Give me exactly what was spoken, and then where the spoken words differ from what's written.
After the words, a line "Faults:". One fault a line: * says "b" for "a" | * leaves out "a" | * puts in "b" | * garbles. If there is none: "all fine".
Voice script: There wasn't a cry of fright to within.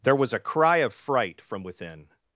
There was a cry of fright from within.
Faults:
* says "was" for "wasn't"
* says "from" for "to"